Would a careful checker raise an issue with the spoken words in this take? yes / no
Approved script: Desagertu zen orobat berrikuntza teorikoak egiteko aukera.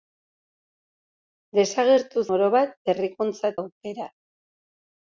yes